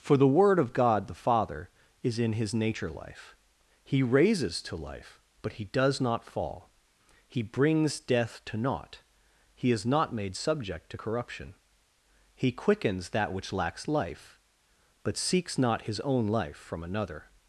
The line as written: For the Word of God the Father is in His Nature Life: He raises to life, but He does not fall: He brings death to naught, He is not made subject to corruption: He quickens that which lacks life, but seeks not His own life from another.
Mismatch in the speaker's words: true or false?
false